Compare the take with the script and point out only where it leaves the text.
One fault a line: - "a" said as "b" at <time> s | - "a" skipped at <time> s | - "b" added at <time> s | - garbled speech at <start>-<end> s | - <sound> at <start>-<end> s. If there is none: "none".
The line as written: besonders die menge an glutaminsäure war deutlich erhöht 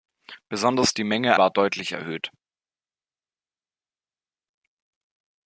- "an glutaminsäure" skipped at 1.4 s